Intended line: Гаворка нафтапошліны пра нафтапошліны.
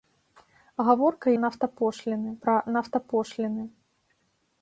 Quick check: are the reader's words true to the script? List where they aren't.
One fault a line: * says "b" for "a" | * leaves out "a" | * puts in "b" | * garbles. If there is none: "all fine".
all fine